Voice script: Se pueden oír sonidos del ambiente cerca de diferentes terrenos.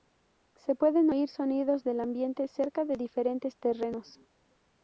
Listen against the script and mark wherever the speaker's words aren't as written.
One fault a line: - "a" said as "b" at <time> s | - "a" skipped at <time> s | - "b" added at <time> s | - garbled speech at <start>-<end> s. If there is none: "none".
none